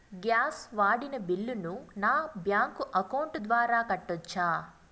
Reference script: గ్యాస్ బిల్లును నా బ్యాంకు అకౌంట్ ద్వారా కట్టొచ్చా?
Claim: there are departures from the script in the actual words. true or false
true